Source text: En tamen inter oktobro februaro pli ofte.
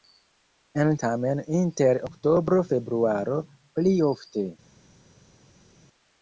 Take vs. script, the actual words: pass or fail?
pass